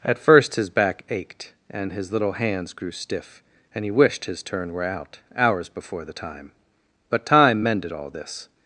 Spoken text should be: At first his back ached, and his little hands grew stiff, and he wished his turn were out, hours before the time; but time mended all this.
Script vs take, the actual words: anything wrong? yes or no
no